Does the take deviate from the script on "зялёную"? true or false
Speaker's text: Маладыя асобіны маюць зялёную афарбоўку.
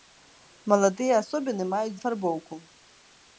true